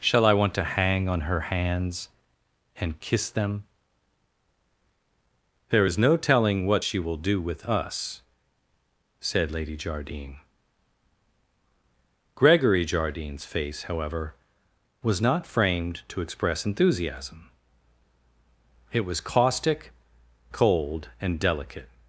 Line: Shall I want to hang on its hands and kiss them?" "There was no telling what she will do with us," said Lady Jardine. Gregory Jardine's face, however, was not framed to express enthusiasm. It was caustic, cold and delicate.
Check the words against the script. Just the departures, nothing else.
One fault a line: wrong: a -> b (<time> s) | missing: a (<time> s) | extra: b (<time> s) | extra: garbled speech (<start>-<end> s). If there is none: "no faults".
wrong: its -> her (1.2 s)
wrong: was -> is (5.8 s)